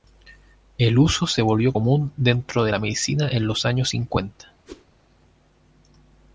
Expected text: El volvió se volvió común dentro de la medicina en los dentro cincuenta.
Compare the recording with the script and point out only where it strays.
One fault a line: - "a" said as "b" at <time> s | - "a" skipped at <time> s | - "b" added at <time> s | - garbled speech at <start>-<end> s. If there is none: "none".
- "volvió" said as "uso" at 1.0 s
- "dentro" said as "años" at 3.6 s